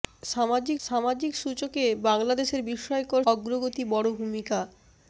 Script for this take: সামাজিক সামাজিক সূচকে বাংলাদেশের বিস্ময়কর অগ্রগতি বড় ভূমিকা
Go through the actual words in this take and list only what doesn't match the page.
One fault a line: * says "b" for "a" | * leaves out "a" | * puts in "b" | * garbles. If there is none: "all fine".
all fine